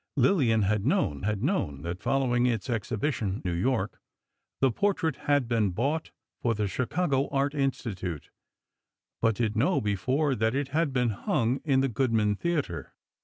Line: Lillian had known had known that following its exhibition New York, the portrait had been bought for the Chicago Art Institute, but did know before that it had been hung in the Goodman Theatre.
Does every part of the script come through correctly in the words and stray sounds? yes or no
yes